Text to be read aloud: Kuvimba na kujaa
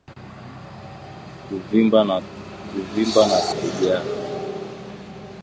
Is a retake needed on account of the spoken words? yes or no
no